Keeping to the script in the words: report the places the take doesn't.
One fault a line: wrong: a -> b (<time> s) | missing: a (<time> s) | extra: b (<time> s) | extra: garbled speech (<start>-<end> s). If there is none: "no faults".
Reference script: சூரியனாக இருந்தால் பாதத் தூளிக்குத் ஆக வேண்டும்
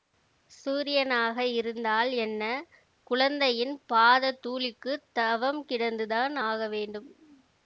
extra: என்ன குழந்தையின் (2.2 s)
extra: தவம் கிடந்துதான் (5.2 s)